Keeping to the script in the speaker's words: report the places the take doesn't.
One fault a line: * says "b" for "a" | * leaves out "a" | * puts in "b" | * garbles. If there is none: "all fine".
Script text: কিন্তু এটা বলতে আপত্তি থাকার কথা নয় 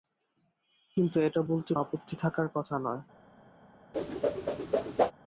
all fine